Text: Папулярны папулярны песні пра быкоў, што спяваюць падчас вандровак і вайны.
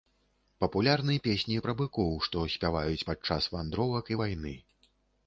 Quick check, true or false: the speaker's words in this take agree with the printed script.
false